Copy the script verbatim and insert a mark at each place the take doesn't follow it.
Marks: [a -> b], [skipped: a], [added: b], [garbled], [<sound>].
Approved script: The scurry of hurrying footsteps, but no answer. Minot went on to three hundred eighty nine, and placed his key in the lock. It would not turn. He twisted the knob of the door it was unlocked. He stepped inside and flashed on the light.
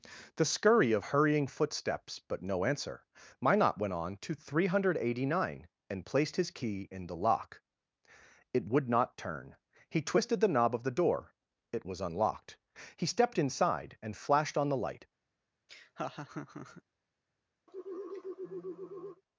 The scurry of hurrying footsteps, but no answer. Minot went on to three hundred eighty nine, and placed his key in the lock. It would not turn. He twisted the knob of the door it was unlocked. He stepped inside and flashed on the light. [laugh] [sigh]